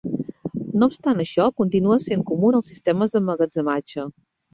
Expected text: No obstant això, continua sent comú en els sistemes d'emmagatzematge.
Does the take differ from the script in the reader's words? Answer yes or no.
no